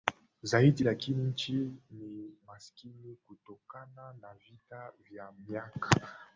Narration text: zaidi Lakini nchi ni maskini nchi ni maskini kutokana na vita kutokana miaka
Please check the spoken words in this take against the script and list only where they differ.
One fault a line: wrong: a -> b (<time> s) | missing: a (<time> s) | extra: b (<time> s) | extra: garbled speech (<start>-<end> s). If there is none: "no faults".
missing: nchi ni maskini (3.2 s)
wrong: kutokana -> vya (5.1 s)